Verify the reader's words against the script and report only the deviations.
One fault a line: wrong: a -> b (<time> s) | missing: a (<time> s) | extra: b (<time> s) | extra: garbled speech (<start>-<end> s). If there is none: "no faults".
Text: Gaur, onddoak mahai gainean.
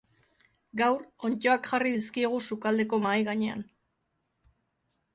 extra: jarri dizkiegu sukaldeko (1.7 s)